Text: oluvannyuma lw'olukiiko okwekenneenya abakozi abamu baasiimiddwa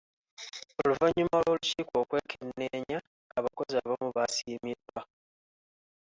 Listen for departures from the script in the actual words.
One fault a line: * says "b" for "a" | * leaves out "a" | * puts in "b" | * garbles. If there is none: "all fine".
all fine